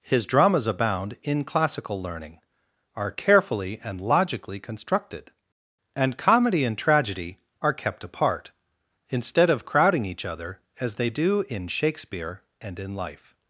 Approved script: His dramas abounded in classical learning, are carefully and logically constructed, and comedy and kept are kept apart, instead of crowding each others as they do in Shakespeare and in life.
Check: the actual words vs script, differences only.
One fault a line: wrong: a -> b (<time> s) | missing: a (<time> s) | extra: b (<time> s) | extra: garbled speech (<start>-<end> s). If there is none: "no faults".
wrong: abounded -> abound (0.7 s)
wrong: kept -> tragedy (6.8 s)
wrong: others -> other (10.2 s)